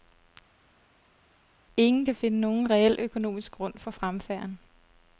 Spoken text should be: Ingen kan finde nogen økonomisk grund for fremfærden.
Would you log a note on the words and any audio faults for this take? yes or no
yes